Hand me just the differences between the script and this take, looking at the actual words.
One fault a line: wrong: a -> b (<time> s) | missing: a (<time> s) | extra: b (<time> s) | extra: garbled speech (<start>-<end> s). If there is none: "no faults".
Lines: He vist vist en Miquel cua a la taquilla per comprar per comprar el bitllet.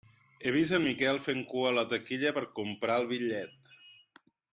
missing: vist (0.8 s)
extra: fent (1.2 s)
missing: per comprar (3.0 s)